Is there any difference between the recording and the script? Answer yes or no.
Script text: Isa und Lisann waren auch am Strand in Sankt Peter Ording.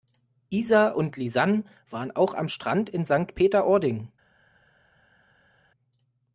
no